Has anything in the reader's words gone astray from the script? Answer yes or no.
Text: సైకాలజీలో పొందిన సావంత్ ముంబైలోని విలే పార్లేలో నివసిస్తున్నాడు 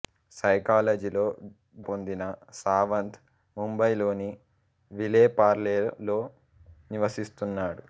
no